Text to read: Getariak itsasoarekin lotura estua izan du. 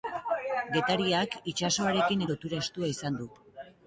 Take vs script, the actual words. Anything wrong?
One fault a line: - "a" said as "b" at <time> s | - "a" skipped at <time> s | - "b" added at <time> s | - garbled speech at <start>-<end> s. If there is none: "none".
none